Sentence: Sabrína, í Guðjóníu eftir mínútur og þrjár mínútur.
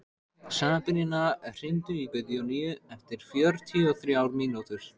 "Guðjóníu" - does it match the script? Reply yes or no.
yes